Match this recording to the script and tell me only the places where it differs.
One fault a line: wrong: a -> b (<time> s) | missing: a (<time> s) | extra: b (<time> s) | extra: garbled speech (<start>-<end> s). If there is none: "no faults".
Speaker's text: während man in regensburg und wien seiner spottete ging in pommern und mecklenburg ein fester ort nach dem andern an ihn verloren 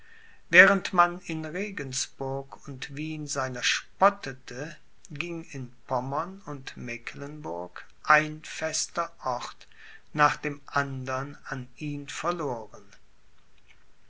no faults